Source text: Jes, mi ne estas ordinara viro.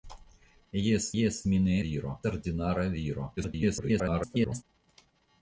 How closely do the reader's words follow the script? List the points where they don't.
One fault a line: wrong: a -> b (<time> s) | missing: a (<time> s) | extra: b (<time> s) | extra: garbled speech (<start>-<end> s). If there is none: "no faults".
extra: jes (1.2 s)
wrong: estas -> viro (1.8 s)
extra: garbled speech (3.4-4.6 s)